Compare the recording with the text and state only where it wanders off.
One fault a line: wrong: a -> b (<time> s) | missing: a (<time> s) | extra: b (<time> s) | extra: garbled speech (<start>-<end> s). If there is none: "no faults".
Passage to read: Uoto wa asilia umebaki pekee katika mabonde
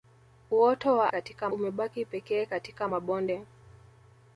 wrong: asilia -> katika (1.1 s)